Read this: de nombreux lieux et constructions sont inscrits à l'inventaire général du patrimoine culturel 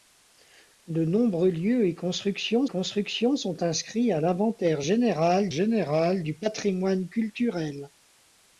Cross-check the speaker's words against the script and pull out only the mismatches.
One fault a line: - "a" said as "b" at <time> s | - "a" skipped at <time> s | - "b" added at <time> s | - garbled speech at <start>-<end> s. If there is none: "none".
- "constructions" added at 2.6 s
- "général" added at 5.5 s